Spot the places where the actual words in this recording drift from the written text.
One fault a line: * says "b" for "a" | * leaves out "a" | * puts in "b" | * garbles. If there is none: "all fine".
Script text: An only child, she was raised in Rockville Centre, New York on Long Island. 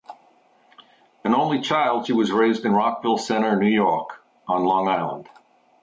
all fine